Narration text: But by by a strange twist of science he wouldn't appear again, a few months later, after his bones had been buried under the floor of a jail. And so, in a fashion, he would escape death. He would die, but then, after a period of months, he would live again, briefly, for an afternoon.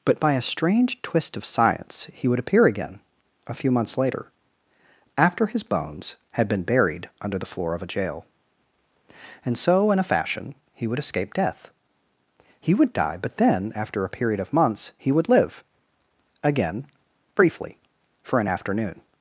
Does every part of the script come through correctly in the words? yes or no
no